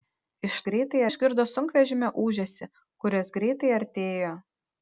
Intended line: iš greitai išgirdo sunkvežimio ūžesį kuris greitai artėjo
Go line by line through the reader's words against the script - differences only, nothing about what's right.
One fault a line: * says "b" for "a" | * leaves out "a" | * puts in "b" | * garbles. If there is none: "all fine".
all fine